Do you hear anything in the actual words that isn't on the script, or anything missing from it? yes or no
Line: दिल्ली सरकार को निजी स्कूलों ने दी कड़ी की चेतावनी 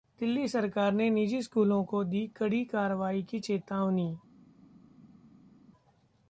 yes